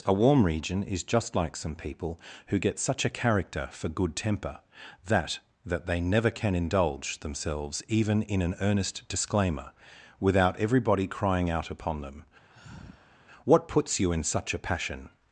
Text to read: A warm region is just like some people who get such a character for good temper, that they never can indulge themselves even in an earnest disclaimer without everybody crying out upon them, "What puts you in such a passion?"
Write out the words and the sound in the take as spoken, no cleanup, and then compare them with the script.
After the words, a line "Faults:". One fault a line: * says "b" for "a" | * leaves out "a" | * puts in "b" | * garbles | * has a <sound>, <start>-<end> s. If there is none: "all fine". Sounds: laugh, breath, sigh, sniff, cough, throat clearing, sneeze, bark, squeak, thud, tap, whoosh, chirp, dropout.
A warm region is just like some people who get such a character for good temper, that that they never can indulge themselves even in an earnest disclaimer without everybody crying out upon them, "What puts you in such a passion?"
Faults:
* puts in "that"
* has a sigh, 12.5-13.2 s